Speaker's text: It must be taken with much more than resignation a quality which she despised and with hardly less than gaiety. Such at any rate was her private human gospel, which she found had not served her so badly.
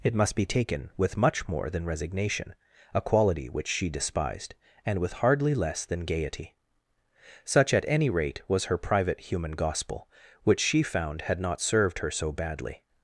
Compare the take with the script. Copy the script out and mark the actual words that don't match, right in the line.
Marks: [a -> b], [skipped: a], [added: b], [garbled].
It must be taken with much more than resignation a quality which she despised and with hardly less than gaiety. Such at any rate was her private human gospel, which she found had not served her so badly.